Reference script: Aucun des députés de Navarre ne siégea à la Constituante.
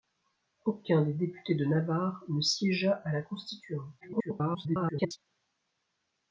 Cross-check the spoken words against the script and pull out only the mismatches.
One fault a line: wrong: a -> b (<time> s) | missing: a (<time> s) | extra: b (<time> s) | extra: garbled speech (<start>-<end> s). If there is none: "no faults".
extra: garbled speech (4.0-5.2 s)